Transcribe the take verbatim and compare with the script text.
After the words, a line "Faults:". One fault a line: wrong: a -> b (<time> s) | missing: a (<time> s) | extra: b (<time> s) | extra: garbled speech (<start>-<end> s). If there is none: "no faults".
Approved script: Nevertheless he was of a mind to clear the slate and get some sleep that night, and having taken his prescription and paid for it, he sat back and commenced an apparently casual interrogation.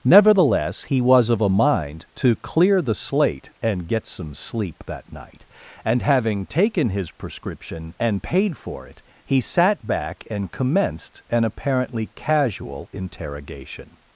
Nevertheless he was of a mind to clear the slate and get some sleep that night, and having taken his prescription and paid for it, he sat back and commenced an apparently casual interrogation.
Faults:
no faults